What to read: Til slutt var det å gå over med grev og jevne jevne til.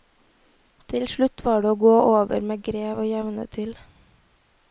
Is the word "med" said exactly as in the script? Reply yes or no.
yes